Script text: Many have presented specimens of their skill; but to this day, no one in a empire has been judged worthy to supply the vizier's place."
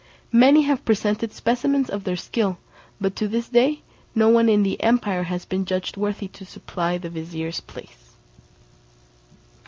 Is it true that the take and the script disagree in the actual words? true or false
true